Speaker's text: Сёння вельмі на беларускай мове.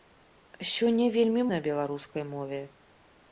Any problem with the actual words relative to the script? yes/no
no